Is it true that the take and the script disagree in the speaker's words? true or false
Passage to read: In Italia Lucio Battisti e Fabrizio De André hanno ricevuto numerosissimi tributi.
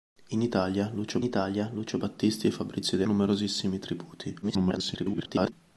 true